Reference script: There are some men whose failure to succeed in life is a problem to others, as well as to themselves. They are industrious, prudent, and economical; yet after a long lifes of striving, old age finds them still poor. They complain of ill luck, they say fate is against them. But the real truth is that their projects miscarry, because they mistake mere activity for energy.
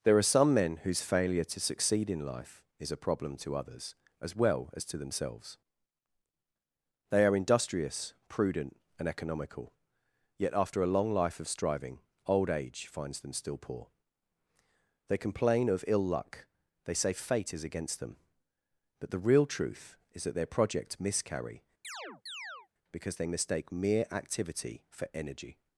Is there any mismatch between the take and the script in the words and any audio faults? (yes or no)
yes